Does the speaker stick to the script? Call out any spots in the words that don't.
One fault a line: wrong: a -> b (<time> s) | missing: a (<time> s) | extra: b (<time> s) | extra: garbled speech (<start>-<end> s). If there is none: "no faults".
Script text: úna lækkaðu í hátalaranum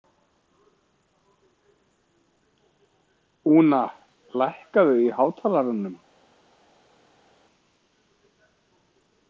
no faults